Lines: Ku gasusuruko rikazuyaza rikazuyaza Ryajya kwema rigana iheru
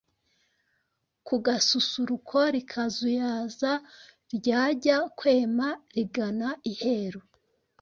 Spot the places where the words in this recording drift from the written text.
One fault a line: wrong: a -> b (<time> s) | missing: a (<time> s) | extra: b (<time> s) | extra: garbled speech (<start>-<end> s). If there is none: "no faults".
missing: rikazuyaza (3.7 s)